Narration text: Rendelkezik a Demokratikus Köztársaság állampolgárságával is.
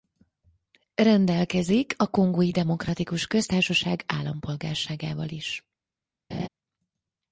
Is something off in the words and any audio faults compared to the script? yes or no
yes